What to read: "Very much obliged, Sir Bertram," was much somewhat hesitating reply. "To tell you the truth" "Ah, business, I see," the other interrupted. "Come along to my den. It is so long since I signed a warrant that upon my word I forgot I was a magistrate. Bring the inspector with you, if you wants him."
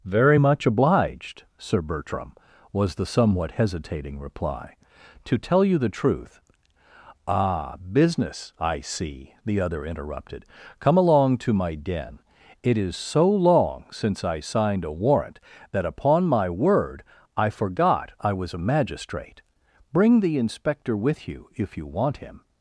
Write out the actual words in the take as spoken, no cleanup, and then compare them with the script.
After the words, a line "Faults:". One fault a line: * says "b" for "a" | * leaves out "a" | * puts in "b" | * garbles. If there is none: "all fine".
"Very much obliged, Sir Bertram," was the somewhat hesitating reply. "To tell you the truth" "Ah, business, I see," the other interrupted. "Come along to my den. It is so long since I signed a warrant that upon my word I forgot I was a magistrate. Bring the inspector with you, if you want him."
Faults:
* says "the" for "much"
* says "want" for "wants"